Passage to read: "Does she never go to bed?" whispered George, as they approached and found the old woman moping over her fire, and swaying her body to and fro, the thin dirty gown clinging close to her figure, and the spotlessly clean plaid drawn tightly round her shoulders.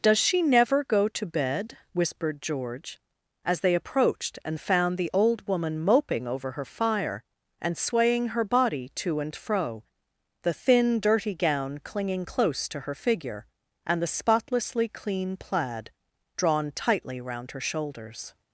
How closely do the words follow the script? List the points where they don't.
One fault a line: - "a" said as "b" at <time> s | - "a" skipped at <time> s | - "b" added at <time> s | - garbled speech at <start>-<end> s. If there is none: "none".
none